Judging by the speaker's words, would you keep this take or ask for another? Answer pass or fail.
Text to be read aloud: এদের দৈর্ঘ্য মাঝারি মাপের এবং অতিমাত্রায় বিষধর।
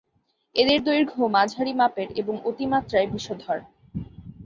pass